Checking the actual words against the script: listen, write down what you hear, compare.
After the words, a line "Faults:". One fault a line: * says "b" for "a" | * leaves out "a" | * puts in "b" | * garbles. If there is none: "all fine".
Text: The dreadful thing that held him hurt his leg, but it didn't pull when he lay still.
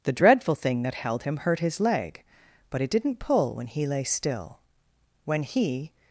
The dreadful thing that held him hurt his leg, but it didn't pull when he lay still. When he
Faults:
* puts in "When he"